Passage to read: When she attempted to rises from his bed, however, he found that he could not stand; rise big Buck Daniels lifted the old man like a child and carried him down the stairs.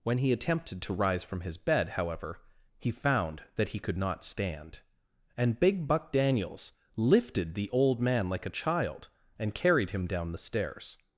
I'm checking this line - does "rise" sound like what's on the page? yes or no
no